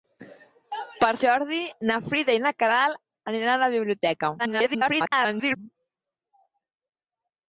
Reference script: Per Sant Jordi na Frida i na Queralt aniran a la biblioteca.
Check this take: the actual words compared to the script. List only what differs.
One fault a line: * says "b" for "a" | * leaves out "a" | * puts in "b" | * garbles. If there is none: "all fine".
* leaves out "Sant"
* garbles